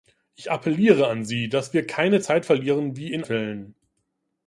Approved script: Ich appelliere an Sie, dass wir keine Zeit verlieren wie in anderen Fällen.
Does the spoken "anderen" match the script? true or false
false